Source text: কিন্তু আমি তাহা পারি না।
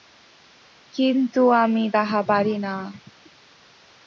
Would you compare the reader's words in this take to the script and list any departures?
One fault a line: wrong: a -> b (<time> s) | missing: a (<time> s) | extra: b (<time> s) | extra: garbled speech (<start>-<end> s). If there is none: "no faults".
no faults